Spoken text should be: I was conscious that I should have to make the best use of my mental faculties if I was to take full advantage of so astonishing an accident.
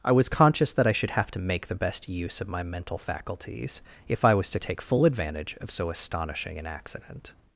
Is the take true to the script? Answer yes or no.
yes